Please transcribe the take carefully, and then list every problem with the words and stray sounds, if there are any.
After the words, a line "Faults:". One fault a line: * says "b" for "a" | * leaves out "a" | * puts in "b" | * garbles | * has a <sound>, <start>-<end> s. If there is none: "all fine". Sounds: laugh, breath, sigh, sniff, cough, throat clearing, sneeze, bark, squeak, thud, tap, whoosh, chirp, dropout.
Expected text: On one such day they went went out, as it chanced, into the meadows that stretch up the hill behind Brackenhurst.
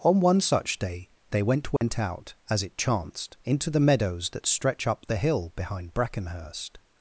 On one such day they went went out, as it chanced, into the meadows that stretch up the hill behind Brackenhurst.
Faults:
* has a dropout, 1.8-1.8 s